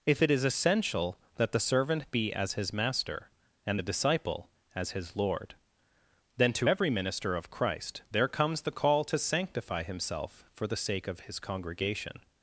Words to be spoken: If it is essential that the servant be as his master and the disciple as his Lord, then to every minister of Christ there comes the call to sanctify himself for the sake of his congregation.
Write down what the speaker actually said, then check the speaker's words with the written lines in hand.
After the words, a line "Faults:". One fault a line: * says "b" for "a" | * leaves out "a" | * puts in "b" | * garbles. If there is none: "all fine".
If it is essential that the servant be as his master and the disciple as his Lord, then to every minister of Christ there comes the call to sanctify himself for the sake of his congregation.
Faults:
all fine